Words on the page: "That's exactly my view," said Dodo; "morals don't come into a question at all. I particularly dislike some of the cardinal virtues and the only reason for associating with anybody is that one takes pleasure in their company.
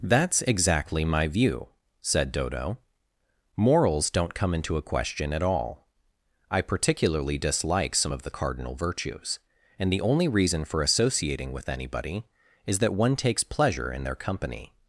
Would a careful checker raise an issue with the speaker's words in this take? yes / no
no